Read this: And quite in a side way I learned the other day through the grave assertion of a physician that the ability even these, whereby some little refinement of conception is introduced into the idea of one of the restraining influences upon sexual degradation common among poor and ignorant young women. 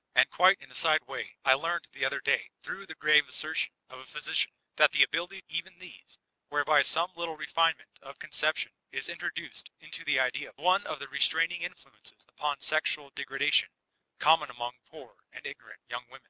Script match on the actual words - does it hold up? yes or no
yes